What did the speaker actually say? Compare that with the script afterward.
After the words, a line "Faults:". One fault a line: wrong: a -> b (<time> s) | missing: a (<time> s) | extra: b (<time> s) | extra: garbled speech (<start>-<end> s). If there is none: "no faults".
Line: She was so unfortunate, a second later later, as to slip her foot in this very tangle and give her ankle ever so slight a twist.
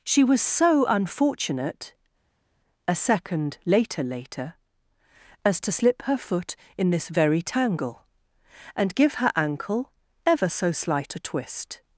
She was so unfortunate, a second later later, as to slip her foot in this very tangle and give her ankle ever so slight a twist.
Faults:
no faults